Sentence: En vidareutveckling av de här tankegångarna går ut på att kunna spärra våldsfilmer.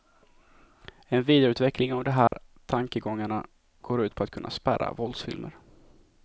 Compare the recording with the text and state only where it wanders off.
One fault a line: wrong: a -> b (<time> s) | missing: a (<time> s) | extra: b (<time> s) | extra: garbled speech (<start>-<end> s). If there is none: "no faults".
no faults